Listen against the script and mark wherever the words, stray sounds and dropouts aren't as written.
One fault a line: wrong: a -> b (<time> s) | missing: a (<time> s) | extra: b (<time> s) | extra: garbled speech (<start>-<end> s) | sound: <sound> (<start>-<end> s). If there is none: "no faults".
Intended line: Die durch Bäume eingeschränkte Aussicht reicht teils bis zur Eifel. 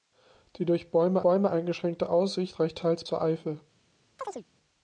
extra: Bäume (1.2 s)
missing: bis (3.0 s)
sound: chirp (4.2-4.5 s)